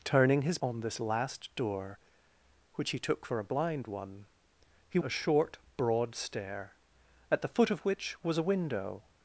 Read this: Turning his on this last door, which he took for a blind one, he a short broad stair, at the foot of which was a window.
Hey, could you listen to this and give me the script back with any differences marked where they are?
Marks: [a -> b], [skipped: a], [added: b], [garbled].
Turning his on this last door, which he took for a blind one, he a short broad stair, at the foot of which was a window.